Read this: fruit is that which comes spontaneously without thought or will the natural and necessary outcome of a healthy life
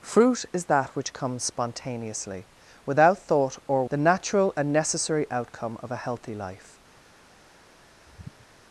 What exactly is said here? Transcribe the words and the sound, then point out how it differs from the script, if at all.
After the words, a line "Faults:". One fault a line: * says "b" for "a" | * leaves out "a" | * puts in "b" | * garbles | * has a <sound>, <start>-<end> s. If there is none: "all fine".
fruit is that which comes spontaneously without thought or the natural and necessary outcome of a healthy life
Faults:
* leaves out "will"
* has a sigh, 8.0-8.5 s